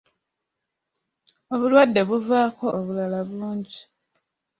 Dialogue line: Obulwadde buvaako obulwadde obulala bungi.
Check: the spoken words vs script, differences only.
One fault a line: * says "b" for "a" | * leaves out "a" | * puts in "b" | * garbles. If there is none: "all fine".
* leaves out "obulwadde"